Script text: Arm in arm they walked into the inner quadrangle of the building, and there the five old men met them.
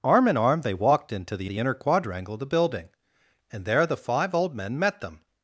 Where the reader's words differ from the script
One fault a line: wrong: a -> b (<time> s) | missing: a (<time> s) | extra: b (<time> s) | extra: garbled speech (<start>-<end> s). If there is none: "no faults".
extra: the (1.5 s)